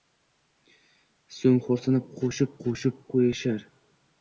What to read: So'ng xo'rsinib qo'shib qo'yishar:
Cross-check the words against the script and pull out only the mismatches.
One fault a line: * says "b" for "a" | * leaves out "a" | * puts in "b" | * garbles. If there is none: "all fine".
* puts in "qo'shib"